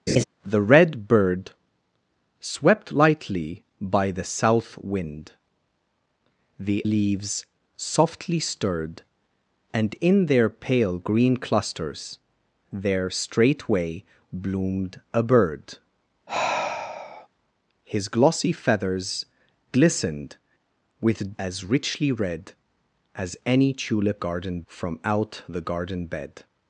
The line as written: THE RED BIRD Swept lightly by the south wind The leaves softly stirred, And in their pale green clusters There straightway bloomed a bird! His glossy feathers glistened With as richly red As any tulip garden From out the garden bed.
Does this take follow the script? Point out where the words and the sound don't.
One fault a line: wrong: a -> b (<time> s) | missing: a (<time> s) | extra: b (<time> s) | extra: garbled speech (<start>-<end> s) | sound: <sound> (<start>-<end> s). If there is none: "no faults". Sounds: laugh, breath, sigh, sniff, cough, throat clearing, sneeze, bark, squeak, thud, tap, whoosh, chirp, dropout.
sound: laugh (0.1-0.2 s)
sound: sigh (16.3-17.3 s)